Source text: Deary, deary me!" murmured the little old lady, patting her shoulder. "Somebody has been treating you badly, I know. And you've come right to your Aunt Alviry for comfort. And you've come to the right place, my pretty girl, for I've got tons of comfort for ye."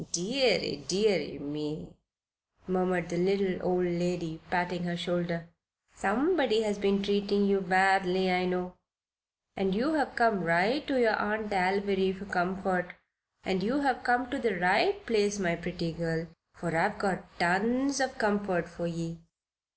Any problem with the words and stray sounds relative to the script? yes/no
no